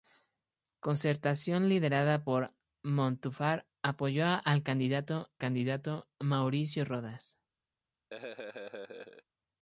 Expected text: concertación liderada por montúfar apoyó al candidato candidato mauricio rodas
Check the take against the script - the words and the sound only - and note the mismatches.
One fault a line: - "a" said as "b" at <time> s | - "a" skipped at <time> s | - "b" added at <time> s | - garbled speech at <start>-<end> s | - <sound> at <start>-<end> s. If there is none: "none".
- laugh at 8.1-9.2 s